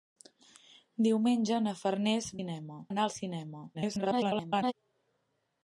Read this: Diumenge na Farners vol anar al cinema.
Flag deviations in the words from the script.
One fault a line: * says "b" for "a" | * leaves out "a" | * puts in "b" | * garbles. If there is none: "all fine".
* says "cinema" for "vol"
* garbles